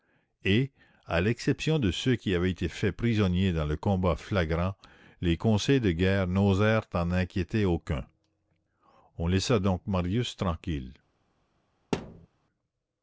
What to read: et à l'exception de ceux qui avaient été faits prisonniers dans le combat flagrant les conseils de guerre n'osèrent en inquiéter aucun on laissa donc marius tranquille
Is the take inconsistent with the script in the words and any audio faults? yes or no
yes